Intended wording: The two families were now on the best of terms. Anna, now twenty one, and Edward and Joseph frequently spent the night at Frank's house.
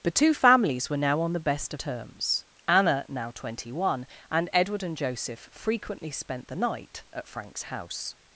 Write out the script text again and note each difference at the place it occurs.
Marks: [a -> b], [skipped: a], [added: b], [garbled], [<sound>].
The two families were now on the best [skipped: of] terms. Anna, now twenty one, and Edward and Joseph frequently spent the night at Frank's house.